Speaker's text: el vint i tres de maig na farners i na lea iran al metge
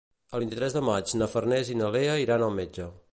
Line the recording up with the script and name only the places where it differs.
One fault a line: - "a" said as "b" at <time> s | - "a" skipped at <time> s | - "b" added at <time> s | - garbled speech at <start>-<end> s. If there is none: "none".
none